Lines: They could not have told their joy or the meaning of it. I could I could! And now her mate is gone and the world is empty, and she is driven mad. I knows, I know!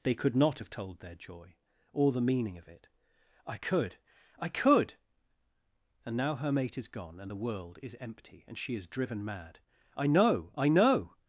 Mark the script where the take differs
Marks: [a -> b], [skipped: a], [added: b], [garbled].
They could not have told their joy or the meaning of it. I could I could! And now her mate is gone and the world is empty, and she is driven mad. I [knows, -> know] I know!